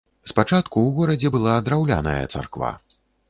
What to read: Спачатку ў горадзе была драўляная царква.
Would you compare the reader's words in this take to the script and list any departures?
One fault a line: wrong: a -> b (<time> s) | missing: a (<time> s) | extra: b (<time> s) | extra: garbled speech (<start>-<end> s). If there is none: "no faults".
no faults